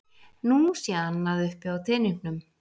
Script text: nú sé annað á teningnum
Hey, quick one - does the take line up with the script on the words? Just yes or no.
no